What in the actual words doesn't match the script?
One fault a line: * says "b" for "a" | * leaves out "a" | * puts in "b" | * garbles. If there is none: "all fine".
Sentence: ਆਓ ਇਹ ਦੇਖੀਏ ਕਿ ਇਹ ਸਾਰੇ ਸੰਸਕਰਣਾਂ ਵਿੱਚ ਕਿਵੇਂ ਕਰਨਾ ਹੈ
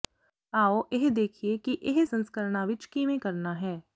* leaves out "ਸਾਰੇ"